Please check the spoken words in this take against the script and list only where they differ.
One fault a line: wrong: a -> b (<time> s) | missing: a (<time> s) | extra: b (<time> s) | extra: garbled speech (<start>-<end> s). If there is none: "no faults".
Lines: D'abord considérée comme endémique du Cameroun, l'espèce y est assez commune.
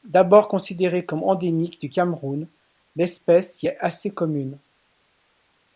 no faults